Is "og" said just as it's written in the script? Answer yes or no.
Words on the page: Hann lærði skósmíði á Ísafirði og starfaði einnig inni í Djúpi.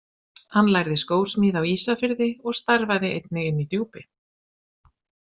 yes